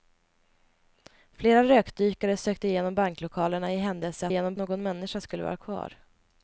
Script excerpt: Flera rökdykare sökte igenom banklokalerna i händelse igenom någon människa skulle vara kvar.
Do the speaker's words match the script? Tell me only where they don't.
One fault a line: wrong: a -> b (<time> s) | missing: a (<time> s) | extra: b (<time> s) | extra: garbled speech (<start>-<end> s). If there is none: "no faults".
no faults